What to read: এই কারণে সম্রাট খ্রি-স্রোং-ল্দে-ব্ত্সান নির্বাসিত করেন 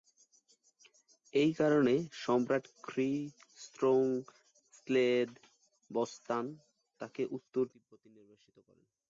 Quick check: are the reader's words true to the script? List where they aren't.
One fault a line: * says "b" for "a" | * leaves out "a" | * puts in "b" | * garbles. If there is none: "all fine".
* puts in "তাকে উত্তর তিব্বতে"